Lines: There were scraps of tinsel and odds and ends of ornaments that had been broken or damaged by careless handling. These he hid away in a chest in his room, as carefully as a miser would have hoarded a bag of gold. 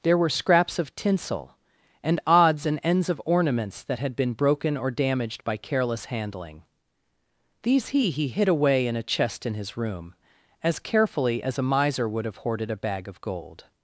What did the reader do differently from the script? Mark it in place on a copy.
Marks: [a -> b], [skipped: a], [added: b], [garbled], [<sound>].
There were scraps of tinsel and odds and ends of ornaments that had been broken or damaged by careless handling. These he [added: he] hid away in a chest in his room, as carefully as a miser would have hoarded a bag of gold.